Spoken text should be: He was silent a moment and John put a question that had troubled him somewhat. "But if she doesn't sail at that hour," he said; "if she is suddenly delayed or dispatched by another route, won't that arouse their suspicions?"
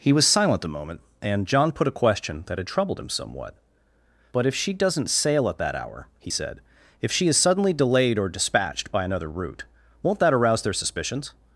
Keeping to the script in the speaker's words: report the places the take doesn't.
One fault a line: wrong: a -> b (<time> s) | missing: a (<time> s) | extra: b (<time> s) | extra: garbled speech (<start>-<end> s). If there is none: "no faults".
no faults